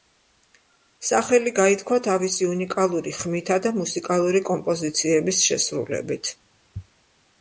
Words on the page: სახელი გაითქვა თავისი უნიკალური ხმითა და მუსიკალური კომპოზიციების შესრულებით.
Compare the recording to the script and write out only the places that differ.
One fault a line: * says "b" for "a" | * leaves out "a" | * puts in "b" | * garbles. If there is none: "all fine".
all fine